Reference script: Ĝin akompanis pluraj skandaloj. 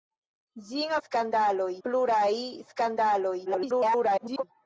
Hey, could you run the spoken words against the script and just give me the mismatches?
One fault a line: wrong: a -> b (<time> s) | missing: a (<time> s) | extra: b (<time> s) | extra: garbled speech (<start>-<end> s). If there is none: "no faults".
wrong: akompanis -> skandaloj (1.0 s)
extra: garbled speech (3.5-4.4 s)